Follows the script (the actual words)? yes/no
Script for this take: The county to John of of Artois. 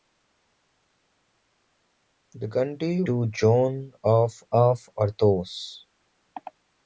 yes